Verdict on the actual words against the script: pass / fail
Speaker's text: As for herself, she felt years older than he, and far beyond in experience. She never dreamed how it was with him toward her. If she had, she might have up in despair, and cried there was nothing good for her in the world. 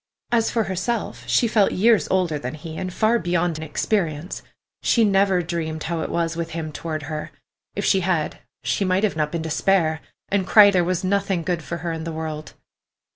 pass